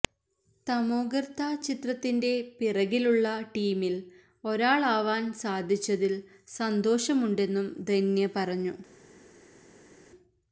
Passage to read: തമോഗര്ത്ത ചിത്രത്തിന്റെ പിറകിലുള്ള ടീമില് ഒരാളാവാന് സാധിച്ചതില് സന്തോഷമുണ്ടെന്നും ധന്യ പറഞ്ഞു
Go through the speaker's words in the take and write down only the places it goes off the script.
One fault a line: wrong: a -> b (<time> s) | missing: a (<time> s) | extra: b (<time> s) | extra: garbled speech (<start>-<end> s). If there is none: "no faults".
no faults